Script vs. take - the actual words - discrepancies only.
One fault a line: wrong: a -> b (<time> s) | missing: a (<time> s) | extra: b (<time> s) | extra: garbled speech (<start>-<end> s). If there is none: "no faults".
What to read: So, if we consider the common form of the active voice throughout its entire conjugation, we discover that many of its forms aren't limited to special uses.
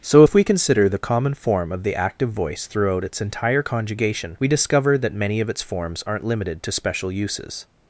no faults